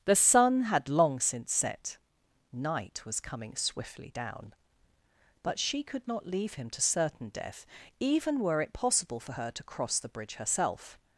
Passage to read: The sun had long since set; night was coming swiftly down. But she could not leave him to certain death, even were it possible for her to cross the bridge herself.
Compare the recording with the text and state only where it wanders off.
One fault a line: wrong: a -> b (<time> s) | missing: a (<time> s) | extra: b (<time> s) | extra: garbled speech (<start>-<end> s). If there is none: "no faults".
no faults